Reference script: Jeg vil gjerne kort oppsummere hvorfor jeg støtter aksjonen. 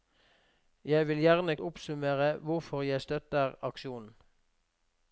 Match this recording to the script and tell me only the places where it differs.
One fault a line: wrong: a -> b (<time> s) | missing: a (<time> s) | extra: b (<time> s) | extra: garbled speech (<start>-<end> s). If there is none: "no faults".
missing: kort (1.6 s)